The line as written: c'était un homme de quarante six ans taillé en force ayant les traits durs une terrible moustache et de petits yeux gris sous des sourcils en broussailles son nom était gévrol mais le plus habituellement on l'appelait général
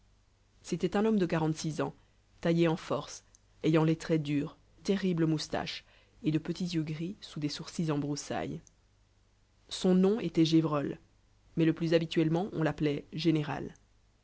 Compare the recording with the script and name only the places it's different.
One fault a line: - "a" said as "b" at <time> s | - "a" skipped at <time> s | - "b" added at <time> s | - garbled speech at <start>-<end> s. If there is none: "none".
- "une" skipped at 4.6 s